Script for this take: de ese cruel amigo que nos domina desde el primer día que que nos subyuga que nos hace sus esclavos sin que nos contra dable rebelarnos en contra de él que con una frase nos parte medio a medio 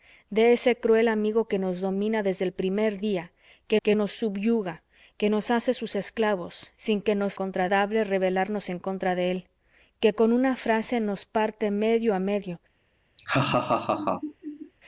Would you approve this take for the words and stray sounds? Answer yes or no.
no